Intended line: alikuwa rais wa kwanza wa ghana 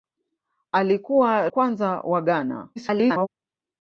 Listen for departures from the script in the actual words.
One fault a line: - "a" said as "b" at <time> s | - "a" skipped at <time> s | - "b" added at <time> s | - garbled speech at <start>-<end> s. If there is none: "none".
- "rais wa" skipped at 1.5 s
- garbled speech at 2.8-3.3 s